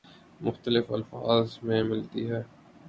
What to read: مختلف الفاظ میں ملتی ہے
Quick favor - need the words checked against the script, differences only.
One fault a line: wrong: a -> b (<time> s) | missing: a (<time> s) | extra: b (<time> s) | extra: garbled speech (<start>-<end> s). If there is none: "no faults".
no faults